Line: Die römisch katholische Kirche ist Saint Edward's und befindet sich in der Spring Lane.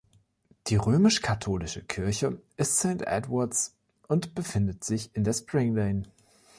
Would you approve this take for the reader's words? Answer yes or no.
yes